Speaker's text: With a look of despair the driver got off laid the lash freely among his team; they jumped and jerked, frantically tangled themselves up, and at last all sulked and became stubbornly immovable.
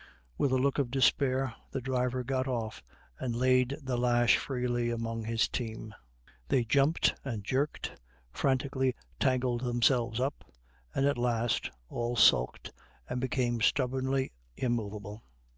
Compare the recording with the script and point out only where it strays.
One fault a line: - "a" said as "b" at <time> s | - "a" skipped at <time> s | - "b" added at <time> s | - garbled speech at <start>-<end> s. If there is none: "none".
- "and" added at 3.2 s